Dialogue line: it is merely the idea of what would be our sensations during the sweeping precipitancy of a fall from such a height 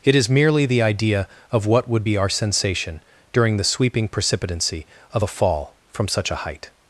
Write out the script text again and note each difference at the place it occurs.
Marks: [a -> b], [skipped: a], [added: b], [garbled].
it is merely the idea of what would be our [sensations -> sensation] during the sweeping precipitancy of a fall from such a height